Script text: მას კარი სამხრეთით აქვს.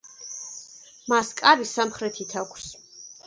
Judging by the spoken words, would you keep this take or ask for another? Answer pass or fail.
pass